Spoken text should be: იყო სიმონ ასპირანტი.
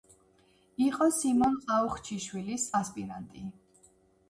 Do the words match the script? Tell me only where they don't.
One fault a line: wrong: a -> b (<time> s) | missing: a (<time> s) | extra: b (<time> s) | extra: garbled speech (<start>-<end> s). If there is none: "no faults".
extra: ყაუხჩიშვილის (1.7 s)